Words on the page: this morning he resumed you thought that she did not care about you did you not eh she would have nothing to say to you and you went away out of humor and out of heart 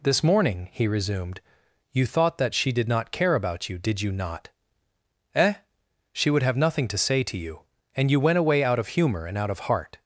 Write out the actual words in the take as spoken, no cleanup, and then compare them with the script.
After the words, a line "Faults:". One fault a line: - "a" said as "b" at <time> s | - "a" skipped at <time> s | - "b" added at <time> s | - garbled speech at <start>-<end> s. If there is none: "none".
this morning he resumed you thought that she did not care about you did you not eh she would have nothing to say to you and you went away out of humor and out of heart
Faults:
none